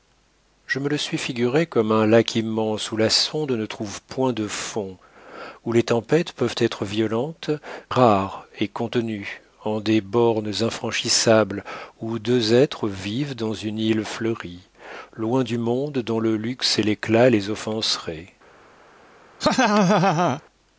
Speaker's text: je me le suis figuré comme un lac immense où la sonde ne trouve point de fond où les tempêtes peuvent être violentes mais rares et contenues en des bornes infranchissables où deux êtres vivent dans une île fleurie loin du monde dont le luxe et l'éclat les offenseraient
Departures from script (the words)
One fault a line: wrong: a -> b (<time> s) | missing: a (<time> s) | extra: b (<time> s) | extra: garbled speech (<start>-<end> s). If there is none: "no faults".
missing: mais (7.5 s)